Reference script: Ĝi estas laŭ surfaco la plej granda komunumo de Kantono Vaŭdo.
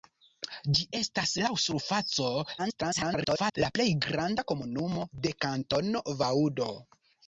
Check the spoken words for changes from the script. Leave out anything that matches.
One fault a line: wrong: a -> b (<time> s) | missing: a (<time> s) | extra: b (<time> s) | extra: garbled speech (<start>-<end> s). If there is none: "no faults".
extra: garbled speech (2.6-3.6 s)